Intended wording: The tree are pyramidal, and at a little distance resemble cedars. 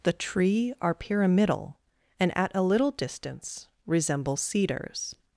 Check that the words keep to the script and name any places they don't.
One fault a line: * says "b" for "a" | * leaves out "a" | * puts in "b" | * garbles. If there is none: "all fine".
all fine